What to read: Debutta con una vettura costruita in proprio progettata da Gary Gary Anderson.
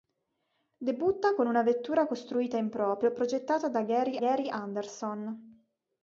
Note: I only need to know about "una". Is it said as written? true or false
true